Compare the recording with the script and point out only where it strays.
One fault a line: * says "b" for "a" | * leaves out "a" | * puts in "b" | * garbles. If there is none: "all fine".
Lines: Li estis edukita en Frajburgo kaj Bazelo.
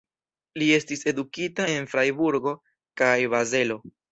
all fine